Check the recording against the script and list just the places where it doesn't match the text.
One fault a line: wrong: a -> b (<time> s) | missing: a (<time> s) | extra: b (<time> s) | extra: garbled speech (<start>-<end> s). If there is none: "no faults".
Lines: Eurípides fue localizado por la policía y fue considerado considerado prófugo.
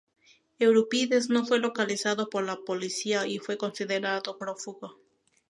extra: no (1.3 s)
missing: considerado (4.4 s)